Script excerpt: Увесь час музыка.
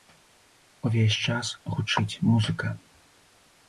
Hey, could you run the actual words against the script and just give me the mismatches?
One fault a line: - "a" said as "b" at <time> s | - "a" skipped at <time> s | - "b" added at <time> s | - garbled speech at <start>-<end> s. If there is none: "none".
- "гучыць" added at 1.8 s